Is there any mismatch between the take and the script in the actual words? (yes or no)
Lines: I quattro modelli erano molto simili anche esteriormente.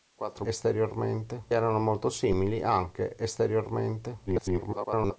yes